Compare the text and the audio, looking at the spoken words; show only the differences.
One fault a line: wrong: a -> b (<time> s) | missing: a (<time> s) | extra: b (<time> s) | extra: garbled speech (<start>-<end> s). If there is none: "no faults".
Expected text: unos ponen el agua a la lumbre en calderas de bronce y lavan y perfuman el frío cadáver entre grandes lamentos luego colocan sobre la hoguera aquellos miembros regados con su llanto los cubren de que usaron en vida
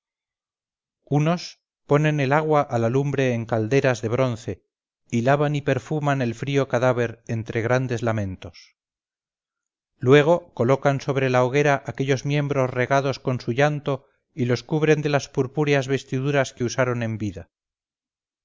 extra: y (14.3 s)
extra: las purpúreas vestiduras (15.1 s)